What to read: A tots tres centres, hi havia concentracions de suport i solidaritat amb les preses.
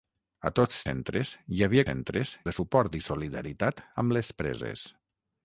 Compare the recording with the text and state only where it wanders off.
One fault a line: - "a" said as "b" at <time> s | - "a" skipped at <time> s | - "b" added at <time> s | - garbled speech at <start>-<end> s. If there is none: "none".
- "tres" skipped at 0.8 s
- "concentracions" said as "centres" at 1.9 s